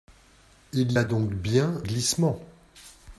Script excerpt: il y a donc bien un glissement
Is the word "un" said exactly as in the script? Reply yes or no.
no